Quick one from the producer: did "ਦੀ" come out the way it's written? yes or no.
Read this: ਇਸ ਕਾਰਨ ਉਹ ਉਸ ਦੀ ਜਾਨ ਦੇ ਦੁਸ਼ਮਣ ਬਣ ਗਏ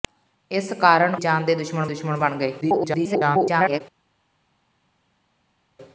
no